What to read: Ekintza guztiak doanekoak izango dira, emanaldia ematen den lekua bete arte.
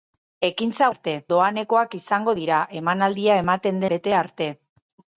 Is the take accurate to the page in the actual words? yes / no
no